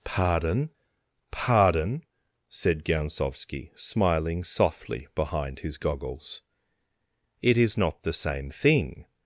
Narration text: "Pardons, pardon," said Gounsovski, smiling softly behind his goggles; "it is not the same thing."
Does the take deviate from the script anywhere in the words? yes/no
yes